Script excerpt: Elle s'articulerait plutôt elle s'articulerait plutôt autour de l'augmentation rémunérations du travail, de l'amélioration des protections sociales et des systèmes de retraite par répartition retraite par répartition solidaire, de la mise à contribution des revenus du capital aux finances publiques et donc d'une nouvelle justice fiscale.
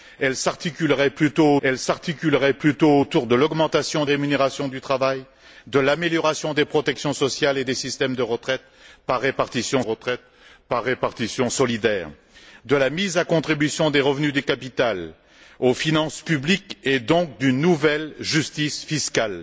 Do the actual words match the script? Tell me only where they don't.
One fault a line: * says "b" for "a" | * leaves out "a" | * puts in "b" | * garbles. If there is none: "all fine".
all fine